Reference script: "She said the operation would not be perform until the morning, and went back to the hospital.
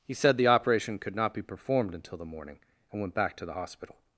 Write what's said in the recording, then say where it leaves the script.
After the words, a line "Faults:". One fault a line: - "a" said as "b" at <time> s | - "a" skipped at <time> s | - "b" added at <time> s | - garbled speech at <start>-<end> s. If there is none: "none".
"He said the operation could not be performed until the morning, and went back to the hospital.
Faults:
- "She" said as "He" at 0.0 s
- "would" said as "could" at 1.0 s
- "perform" said as "performed" at 1.4 s